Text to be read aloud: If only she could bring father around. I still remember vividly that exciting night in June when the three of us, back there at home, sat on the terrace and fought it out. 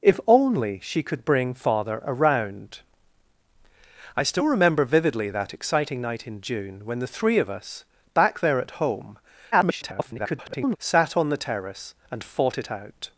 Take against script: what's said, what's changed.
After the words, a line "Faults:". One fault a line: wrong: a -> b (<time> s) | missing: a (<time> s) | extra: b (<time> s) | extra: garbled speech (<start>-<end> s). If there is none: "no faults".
If only she could bring father around. I still remember vividly that exciting night in June when the three of us, back there at home, [garbled] sat on the terrace and fought it out.
Faults:
extra: garbled speech (9.5-10.8 s)